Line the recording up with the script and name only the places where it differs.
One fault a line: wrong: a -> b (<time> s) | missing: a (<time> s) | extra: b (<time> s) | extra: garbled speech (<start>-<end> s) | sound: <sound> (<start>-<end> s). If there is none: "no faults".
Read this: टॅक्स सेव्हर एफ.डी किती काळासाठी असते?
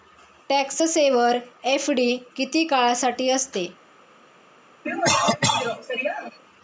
sound: cough (4.8-6.4 s)